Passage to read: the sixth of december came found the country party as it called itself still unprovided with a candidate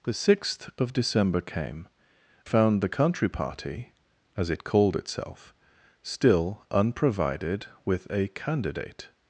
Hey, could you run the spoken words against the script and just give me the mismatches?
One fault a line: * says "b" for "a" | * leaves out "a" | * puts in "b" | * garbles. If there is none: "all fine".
all fine